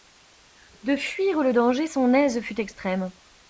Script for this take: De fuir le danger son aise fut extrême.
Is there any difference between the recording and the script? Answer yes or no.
no